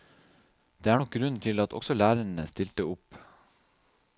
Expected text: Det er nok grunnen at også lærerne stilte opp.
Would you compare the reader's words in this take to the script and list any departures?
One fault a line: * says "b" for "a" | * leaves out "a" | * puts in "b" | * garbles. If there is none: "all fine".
* puts in "til"